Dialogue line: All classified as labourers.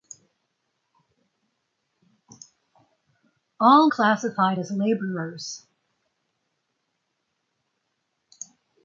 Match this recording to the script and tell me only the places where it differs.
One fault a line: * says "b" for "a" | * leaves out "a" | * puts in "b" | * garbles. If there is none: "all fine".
all fine